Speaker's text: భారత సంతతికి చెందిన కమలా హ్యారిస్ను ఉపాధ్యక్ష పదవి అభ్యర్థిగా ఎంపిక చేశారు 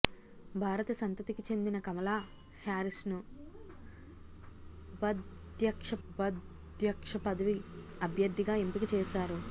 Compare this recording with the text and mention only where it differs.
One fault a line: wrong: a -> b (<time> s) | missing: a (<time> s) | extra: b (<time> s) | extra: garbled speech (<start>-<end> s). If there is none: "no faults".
extra: ఉపాధ్యక్ష (6.1 s)